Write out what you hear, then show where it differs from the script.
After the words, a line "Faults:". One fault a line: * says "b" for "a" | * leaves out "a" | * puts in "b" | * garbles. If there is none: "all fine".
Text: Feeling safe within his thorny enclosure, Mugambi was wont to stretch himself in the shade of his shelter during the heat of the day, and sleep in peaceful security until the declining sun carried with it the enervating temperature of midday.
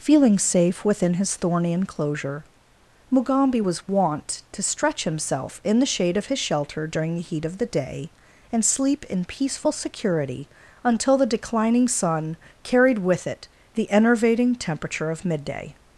Feeling safe within his thorny enclosure, Mugambi was wont to stretch himself in the shade of his shelter during the heat of the day, and sleep in peaceful security until the declining sun carried with it the enervating temperature of midday.
Faults:
all fine